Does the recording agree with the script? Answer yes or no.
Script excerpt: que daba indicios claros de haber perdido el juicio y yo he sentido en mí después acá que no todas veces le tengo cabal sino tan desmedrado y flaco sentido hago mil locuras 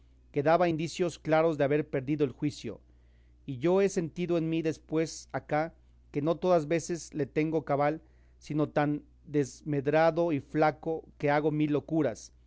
no